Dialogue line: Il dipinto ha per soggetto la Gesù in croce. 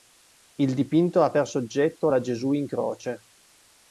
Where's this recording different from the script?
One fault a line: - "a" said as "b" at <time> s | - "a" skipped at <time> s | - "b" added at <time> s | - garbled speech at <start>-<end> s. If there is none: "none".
none